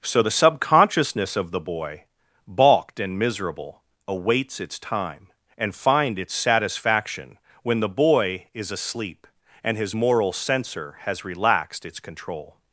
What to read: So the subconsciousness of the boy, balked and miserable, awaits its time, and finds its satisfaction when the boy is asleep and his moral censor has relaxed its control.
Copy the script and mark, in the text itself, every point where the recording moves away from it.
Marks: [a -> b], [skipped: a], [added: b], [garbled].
So the subconsciousness of the boy, balked and miserable, awaits its time, and [finds -> find] its satisfaction when the boy is asleep and his moral censor has relaxed its control.